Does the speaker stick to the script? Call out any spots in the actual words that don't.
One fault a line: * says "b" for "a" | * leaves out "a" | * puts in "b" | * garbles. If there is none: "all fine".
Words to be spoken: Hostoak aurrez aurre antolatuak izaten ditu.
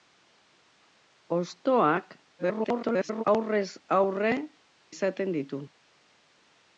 * garbles
* leaves out "antolatuak"